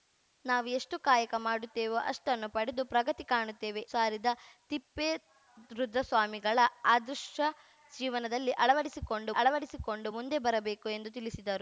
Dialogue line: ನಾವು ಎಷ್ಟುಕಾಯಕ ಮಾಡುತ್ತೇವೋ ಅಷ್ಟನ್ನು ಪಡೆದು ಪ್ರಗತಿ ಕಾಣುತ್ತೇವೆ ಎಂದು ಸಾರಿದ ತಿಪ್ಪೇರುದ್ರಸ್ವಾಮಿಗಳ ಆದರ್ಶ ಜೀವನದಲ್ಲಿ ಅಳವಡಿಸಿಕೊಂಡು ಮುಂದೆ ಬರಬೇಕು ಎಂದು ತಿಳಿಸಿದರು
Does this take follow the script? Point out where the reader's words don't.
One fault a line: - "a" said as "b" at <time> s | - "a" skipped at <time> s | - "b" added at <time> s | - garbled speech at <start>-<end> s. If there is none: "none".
- "ಎಂದು" skipped at 3.8 s
- "ಅಳವಡಿಸಿಕೊಂಡು" added at 9.4 s